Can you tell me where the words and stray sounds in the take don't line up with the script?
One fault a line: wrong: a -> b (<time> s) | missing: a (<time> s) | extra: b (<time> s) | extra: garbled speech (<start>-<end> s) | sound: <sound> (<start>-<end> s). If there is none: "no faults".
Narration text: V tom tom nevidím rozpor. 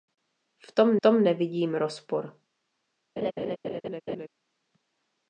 sound: laugh (3.2-4.3 s)